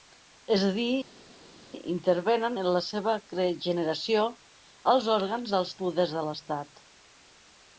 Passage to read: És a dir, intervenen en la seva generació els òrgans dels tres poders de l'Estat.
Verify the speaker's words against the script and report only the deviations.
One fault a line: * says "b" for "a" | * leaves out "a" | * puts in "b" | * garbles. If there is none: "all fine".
* leaves out "tres"